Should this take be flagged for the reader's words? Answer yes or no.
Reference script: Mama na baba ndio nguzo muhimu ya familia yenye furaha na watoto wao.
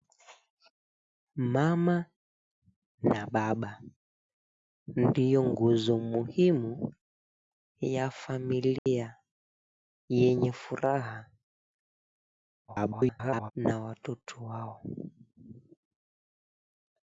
yes